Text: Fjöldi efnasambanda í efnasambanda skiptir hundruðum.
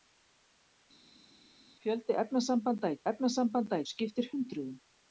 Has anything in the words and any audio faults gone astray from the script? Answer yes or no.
no